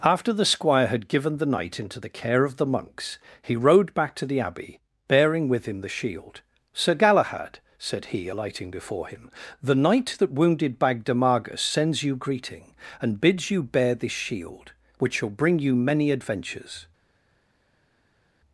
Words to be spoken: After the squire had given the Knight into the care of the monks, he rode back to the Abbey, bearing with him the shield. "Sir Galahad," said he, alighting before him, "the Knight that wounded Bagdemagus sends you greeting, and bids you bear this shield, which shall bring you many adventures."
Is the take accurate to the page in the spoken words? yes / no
yes